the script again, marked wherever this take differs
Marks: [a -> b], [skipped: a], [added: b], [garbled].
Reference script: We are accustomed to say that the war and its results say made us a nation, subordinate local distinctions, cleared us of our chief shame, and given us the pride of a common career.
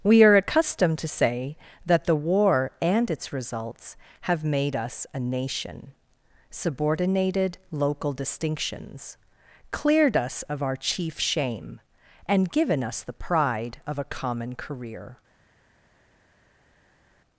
We are accustomed to say that the war and its results [say -> have] made us a nation, [subordinate -> subordinated] local distinctions, cleared us of our chief shame, and given us the pride of a common career.